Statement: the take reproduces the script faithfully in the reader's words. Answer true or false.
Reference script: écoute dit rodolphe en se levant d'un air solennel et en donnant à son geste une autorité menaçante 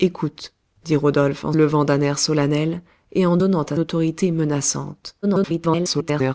false